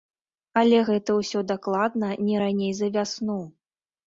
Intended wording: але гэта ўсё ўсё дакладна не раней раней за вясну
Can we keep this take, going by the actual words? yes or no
no